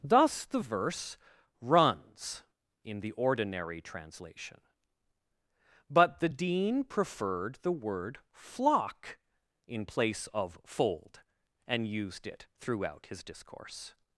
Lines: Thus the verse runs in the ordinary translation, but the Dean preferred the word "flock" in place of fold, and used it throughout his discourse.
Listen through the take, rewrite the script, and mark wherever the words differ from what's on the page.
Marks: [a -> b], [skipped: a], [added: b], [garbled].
Thus the verse runs in the ordinary translation, but the Dean preferred the word "flock" in place of fold, and used it throughout his discourse.